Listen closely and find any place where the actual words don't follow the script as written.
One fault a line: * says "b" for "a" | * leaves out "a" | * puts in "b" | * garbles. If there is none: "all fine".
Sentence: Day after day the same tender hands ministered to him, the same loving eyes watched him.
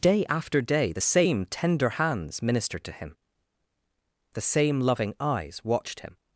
all fine